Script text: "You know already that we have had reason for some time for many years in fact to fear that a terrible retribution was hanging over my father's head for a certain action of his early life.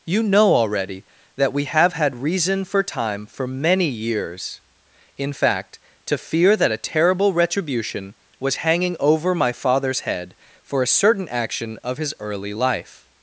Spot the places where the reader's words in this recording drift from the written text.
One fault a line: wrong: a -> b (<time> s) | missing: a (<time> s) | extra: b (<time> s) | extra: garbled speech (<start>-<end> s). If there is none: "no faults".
missing: some (2.8 s)